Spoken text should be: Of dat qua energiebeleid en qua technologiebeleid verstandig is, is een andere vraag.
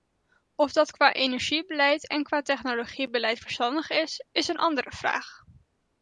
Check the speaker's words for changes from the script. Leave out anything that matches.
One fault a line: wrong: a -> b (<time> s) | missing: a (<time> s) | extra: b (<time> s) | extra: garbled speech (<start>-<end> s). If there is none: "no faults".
no faults